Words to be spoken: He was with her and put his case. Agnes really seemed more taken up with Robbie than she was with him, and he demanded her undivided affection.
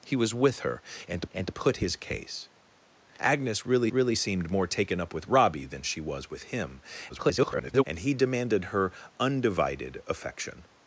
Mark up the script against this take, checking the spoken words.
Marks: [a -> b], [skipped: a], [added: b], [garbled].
He was with her and [added: and] put his case. Agnes really [added: really] seemed more taken up with Robbie than she was with him, [garbled] and he demanded her undivided affection.